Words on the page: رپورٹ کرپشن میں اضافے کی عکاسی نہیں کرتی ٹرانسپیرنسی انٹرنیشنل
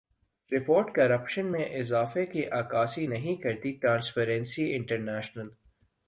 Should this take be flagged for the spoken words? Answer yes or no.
no